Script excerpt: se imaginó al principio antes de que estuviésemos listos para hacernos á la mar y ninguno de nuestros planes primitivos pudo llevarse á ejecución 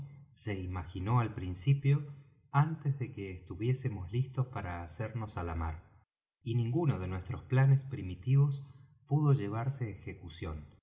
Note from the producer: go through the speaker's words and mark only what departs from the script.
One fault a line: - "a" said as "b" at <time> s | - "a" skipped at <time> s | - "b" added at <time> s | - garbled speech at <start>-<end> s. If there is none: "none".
none